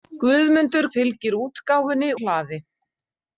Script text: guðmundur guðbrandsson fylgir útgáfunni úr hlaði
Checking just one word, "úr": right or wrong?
wrong